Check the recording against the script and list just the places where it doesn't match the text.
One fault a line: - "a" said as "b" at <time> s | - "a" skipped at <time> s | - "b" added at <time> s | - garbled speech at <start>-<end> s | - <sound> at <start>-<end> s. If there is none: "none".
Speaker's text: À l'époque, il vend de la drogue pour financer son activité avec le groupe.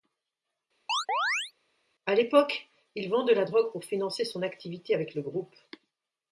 - chirp at 0.9-1.5 s